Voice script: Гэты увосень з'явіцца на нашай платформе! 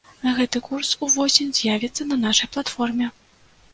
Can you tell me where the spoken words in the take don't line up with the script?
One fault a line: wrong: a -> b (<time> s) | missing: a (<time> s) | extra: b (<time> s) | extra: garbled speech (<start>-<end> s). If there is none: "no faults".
extra: курс (0.7 s)